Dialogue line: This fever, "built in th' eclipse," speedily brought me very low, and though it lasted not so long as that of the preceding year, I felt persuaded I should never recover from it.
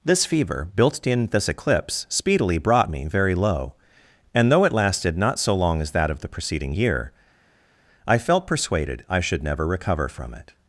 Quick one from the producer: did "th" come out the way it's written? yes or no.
no